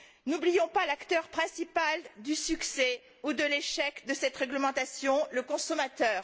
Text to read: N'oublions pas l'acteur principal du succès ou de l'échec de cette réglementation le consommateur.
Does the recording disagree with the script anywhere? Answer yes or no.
no